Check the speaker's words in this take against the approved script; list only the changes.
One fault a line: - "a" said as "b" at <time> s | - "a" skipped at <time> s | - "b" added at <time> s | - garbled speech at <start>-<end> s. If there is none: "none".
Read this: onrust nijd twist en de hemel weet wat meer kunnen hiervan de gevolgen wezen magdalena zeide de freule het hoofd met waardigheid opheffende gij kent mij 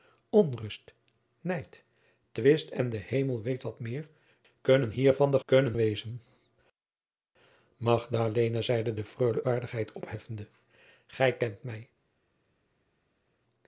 - "gevolgen" said as "kunnen" at 5.4 s
- "het hoofd met" skipped at 9.4 s